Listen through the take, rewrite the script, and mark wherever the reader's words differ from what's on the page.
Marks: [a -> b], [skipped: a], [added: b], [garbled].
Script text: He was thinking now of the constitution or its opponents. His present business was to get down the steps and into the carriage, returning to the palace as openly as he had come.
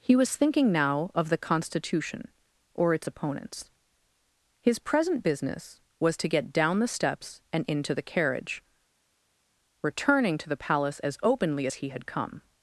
He was thinking now of the constitution or its opponents. His present business was to get down the steps and into the carriage, returning to the palace as openly as he had come.